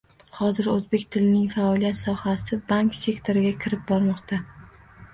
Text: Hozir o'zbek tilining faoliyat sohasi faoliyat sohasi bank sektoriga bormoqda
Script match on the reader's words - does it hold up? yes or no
no